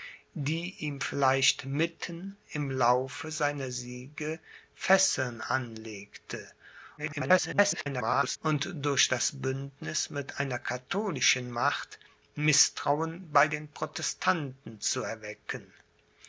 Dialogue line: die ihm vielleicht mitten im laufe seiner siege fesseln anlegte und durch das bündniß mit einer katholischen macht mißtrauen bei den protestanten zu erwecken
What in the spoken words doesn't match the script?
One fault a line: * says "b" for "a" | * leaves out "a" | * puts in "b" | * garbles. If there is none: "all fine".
* garbles